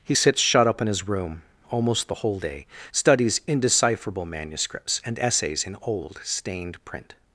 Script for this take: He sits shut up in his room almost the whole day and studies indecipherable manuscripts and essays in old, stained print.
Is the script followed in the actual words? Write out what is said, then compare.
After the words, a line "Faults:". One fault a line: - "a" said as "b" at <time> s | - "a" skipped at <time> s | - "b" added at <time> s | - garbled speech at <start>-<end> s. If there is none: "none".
He sits shut up in his room almost the whole day studies indecipherable manuscripts and essays in old, stained print.
Faults:
- "and" skipped at 2.7 s